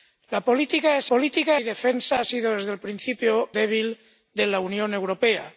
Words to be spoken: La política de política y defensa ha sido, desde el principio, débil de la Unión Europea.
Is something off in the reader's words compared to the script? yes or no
no